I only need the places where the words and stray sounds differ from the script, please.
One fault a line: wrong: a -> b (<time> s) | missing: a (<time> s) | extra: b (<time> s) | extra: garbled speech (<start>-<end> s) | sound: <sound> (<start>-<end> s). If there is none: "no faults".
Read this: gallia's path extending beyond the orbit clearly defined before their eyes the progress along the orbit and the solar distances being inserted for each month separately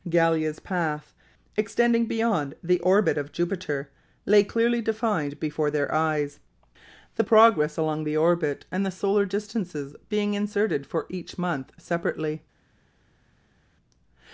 extra: of jupiter lay (3.2 s)